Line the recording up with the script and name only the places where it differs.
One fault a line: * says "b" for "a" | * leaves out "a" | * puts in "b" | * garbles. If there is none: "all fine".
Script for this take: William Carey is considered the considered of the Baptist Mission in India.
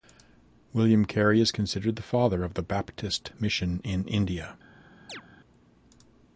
* says "father" for "considered"